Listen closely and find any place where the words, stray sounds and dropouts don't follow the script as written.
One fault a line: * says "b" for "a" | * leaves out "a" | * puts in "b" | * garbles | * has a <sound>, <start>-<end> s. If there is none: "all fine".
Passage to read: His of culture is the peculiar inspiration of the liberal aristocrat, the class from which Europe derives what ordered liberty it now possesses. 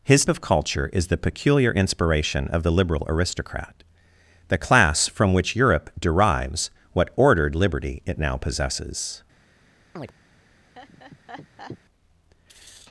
* has a chirp, 10.0-10.1 s
* has a laugh, 10.7-11.8 s